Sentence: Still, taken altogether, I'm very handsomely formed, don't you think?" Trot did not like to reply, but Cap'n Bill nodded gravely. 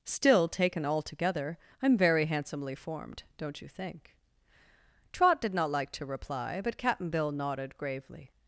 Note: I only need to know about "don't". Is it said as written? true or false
true